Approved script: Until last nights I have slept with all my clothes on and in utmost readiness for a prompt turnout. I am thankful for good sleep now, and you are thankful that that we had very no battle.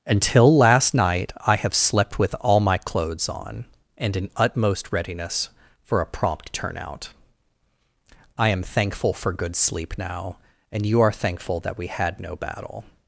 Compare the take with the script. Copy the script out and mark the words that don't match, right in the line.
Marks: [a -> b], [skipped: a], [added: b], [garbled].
Until last [nights -> night] I have slept with all my clothes on and in utmost readiness for a prompt turnout. I am thankful for good sleep now, and you are thankful that [skipped: that] we had [skipped: very] no battle.